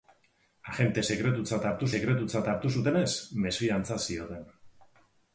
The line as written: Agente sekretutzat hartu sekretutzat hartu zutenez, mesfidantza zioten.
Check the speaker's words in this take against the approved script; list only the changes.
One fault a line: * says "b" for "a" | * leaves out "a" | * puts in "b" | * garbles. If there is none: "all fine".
all fine